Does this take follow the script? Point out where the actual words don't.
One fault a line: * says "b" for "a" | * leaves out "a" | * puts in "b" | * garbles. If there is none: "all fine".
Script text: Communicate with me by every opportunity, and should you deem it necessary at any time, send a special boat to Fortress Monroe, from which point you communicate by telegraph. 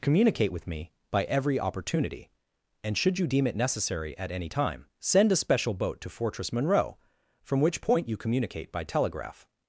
all fine